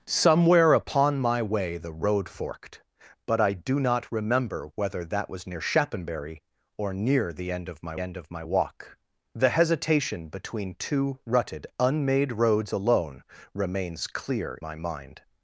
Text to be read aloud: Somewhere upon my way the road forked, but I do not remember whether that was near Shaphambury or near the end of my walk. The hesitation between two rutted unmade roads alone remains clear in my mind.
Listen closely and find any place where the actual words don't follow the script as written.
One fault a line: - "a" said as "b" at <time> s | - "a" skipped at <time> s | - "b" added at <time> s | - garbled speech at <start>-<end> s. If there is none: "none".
- "end of my" added at 8.0 s
- "in" skipped at 14.6 s